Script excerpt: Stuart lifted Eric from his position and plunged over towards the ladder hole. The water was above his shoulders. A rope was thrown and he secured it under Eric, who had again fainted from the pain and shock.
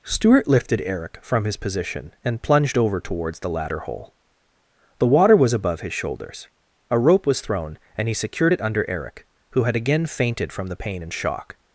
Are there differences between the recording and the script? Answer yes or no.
no